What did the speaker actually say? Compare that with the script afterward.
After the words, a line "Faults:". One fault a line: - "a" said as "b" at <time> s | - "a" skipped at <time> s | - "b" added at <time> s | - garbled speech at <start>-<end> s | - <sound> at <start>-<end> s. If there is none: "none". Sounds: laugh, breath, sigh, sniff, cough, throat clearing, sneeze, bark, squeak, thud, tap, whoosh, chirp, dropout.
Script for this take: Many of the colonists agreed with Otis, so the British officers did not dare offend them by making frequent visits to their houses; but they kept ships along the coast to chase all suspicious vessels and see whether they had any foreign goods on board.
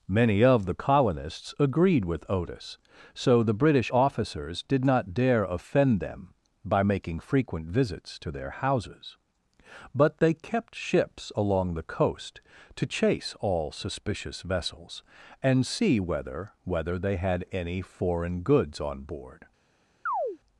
Many of the colonists agreed with Otis, so the British officers did not dare offend them by making frequent visits to their houses; but they kept ships along the coast to chase all suspicious vessels and see whether whether they had any foreign goods on board.
Faults:
- "whether" added at 16.6 s
- chirp at 20.1-20.4 s